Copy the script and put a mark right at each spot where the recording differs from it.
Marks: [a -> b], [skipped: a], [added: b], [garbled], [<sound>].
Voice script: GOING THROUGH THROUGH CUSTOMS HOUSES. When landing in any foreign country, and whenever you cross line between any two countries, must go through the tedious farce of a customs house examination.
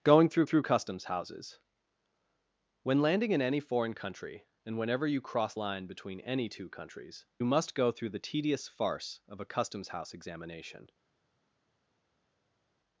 GOING THROUGH THROUGH CUSTOMS HOUSES. When landing in any foreign country, and whenever you cross line between any two countries, must go through the tedious farce of a customs house examination.